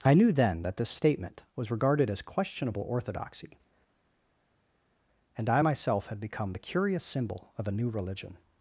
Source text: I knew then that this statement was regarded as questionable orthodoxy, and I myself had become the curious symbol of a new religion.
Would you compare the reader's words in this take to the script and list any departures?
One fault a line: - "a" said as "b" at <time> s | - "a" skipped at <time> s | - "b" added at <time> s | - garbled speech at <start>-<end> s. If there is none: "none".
none